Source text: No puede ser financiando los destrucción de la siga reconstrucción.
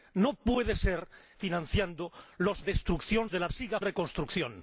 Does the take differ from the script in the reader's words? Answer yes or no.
no